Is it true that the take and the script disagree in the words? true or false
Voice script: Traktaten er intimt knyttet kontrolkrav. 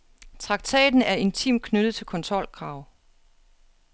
true